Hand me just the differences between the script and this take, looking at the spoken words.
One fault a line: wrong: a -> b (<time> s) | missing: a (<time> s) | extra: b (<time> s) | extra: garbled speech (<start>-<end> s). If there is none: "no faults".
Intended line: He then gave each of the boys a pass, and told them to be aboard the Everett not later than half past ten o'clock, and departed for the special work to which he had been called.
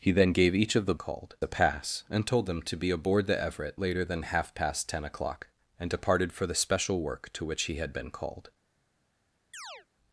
wrong: boys -> called (1.0 s)
missing: not (3.8 s)